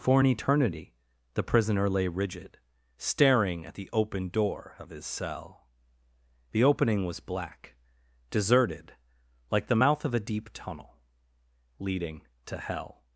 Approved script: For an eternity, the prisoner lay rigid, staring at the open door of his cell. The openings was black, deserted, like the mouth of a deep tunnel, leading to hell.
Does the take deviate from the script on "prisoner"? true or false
false